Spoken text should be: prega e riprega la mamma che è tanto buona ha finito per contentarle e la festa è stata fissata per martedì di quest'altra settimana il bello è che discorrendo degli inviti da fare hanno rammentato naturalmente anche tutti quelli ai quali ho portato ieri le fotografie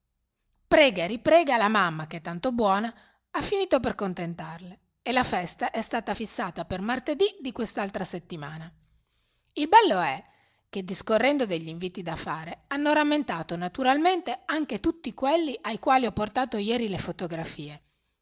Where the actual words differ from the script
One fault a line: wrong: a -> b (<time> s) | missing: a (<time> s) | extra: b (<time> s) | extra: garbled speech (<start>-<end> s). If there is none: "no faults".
no faults